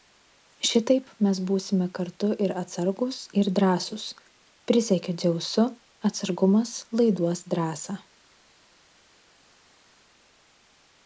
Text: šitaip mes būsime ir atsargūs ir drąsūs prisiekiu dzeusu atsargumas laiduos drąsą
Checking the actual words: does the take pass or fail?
fail